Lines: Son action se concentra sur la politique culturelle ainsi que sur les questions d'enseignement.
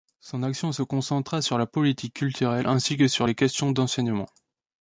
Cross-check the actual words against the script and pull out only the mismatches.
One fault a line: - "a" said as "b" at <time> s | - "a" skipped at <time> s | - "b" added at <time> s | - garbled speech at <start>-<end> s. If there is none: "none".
none